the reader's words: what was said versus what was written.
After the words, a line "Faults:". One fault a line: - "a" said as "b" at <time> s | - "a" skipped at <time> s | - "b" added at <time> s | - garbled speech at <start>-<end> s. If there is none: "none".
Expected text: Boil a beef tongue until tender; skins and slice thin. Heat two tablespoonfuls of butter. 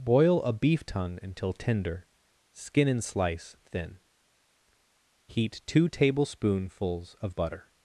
Boil a beef tongue until tender; skin and slice thin. Heat two tablespoonfuls of butter.
Faults:
- "skins" said as "skin" at 2.5 s